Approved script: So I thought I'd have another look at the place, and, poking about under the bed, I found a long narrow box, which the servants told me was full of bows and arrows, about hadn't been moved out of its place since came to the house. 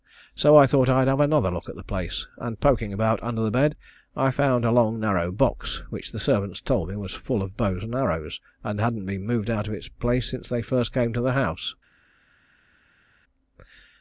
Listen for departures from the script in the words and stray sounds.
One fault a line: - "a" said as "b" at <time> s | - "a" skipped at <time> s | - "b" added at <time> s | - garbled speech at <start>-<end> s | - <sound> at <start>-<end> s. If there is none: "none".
- "about" said as "and" at 8.6 s
- "they first" added at 10.5 s